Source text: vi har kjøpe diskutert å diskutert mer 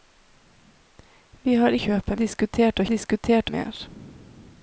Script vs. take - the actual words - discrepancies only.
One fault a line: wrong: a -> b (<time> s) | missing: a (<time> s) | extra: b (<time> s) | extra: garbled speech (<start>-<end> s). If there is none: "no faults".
no faults